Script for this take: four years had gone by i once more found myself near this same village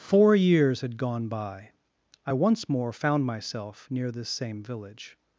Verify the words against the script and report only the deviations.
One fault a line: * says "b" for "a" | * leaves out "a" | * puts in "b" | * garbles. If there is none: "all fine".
all fine